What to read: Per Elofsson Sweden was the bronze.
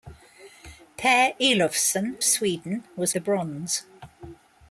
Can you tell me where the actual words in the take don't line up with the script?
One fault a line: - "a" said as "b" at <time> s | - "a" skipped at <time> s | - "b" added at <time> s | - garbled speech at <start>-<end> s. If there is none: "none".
none